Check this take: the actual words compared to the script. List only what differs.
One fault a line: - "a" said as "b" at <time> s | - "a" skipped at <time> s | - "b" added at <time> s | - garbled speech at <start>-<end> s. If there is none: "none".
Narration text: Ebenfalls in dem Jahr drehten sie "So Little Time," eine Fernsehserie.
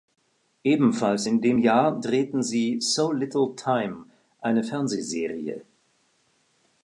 none